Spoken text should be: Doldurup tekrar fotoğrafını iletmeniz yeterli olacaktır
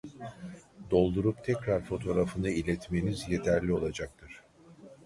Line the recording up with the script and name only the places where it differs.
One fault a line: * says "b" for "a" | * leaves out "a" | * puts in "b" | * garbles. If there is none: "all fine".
all fine